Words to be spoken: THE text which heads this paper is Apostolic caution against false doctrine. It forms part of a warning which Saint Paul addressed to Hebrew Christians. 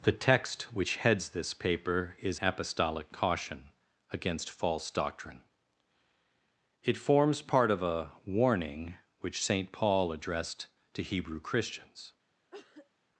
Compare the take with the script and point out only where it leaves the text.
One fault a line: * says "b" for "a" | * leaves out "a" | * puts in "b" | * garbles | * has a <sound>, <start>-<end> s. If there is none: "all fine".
* has a cough, 12.5-12.9 s